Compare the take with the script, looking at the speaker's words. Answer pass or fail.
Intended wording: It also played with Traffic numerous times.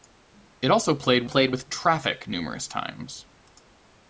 fail